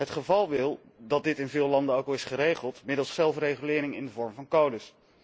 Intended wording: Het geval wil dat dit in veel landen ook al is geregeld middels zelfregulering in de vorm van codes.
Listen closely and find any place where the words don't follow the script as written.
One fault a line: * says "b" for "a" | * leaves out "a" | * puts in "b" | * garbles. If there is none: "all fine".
all fine